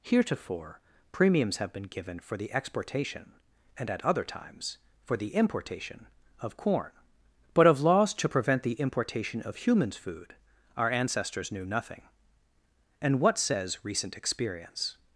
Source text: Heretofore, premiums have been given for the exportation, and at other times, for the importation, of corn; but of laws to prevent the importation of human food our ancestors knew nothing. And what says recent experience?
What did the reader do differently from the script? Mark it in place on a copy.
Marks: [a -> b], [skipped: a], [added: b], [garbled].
Heretofore, premiums have been given for the exportation, and at other times, for the importation, of corn; but of laws to prevent the importation of [human -> humans] food our ancestors knew nothing. And what says recent experience?